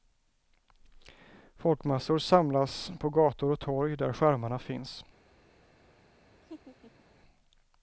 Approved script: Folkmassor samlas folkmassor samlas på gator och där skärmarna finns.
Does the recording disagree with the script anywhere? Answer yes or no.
yes